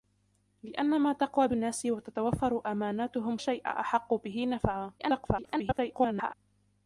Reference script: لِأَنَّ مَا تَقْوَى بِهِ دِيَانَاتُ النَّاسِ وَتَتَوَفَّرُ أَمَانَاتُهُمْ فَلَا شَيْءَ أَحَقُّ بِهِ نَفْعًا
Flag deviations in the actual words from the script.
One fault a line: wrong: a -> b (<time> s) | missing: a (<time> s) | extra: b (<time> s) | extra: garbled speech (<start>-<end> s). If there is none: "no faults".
missing: بِهِ دِيَانَاتُ (1.5 s)
missing: فَلَا (3.4 s)
extra: garbled speech (5.0-6.3 s)